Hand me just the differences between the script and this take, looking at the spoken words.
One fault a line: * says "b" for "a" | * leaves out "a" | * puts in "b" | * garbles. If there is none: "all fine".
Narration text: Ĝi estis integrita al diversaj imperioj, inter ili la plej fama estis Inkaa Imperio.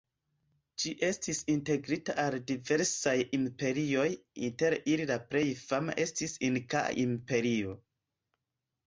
all fine